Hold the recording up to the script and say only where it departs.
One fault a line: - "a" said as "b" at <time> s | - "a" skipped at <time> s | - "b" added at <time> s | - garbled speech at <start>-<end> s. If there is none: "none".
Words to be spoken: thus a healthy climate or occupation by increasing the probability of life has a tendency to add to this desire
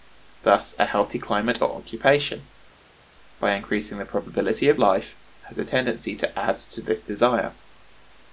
none